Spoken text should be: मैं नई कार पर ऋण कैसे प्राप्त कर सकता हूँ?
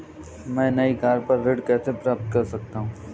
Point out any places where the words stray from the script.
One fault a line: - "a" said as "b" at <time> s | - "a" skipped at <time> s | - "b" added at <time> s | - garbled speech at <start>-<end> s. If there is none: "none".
none